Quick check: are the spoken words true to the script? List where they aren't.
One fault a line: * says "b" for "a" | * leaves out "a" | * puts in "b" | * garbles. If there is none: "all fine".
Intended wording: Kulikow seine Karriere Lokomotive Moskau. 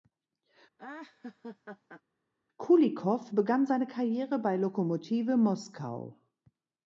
* puts in "begann"
* puts in "bei"